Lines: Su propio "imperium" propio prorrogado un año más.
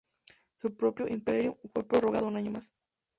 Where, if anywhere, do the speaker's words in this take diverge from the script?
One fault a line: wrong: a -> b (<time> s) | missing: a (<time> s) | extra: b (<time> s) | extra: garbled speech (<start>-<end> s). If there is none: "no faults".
wrong: propio -> fue (1.7 s)